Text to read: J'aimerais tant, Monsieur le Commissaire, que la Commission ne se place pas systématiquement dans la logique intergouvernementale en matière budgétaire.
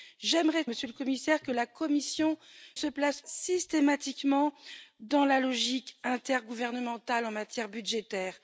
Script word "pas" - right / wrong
wrong